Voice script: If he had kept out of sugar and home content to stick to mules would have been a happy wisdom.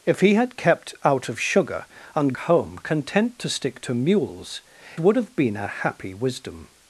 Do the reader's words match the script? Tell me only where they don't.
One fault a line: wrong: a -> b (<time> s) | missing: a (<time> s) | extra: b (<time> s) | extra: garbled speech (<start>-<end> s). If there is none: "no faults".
no faults